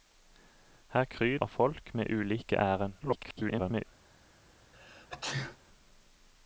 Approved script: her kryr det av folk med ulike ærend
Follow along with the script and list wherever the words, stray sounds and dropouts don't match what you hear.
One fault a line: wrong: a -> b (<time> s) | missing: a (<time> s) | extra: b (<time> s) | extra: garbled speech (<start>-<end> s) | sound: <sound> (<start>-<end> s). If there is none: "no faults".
missing: det (1.4 s)
extra: garbled speech (3.0-3.8 s)
sound: sneeze (4.7-5.6 s)